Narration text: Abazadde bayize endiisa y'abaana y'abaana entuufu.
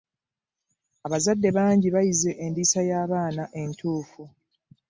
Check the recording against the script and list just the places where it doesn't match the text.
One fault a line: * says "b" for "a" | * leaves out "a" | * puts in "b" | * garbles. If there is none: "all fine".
* puts in "bangi"
* leaves out "y'abaana"